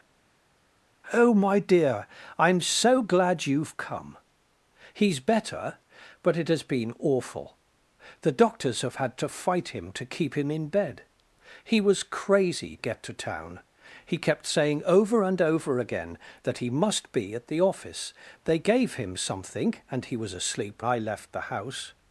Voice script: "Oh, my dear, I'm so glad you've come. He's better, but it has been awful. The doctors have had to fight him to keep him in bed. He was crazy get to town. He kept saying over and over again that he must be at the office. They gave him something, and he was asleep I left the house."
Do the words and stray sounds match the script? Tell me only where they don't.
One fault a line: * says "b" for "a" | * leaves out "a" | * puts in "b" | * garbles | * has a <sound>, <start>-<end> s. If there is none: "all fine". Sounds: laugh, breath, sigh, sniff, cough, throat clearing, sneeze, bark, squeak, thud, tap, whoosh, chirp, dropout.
all fine